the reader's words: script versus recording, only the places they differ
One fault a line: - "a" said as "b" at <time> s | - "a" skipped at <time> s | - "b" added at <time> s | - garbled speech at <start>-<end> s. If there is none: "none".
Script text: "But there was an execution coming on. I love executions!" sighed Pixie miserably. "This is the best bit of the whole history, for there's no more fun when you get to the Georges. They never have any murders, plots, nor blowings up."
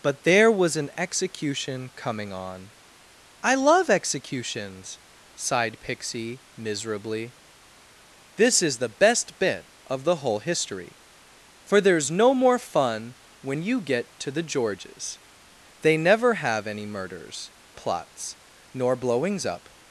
none